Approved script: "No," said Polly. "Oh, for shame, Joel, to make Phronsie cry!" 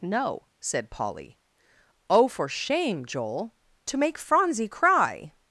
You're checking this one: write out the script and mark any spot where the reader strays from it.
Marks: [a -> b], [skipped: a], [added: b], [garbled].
"No," said Polly. "Oh, for shame, Joel, to make Phronsie cry!"